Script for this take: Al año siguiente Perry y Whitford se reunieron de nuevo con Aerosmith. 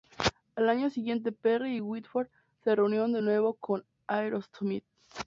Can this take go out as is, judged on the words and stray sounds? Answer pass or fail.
pass